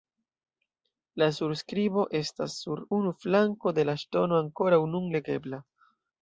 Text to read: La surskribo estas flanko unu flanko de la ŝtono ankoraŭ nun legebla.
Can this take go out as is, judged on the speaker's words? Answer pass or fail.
fail